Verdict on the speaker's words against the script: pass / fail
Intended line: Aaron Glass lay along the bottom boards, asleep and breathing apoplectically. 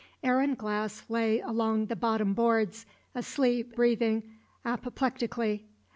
fail